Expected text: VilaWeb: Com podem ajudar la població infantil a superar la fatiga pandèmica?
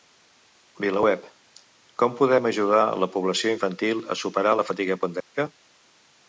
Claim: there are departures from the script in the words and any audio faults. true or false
true